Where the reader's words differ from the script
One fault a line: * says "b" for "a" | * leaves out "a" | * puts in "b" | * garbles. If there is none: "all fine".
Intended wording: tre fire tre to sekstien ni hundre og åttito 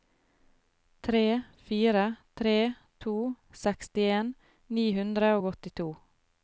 all fine